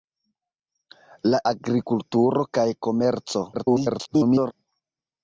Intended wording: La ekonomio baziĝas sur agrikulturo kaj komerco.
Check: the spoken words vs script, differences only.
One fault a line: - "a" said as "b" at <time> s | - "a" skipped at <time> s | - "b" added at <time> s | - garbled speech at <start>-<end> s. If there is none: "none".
- "ekonomio baziĝas sur" skipped at 1.4 s
- garbled speech at 3.5-4.5 s